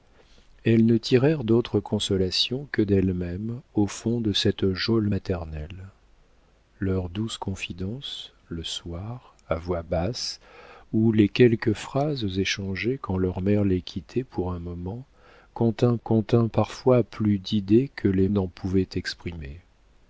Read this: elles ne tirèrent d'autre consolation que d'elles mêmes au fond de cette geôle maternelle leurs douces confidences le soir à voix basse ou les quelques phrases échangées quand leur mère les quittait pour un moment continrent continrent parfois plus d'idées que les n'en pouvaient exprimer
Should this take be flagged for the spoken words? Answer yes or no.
no